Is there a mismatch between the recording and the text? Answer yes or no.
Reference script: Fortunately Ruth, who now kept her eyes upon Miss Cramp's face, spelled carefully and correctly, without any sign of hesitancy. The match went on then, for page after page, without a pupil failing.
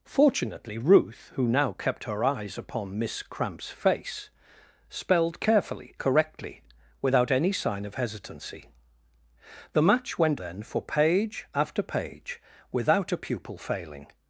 yes